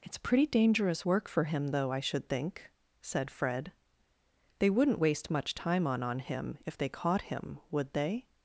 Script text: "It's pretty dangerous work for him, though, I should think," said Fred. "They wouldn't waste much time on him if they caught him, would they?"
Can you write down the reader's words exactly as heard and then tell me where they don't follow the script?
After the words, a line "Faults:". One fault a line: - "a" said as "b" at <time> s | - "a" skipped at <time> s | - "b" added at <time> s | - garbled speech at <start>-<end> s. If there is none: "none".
"It's pretty dangerous work for him, though, I should think," said Fred. "They wouldn't waste much time on on him if they caught him, would they?"
Faults:
- "on" added at 6.0 s